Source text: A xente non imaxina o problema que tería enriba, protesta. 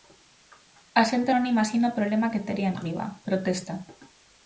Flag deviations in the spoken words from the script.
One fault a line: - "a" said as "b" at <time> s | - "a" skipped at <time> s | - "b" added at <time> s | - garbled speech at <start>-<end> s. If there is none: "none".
none